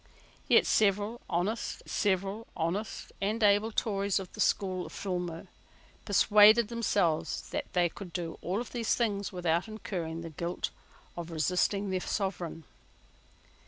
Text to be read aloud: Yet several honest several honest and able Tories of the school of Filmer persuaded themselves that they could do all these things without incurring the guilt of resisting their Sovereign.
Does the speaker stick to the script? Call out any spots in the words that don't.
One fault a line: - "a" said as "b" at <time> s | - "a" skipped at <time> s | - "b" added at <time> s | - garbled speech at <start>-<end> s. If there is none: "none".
none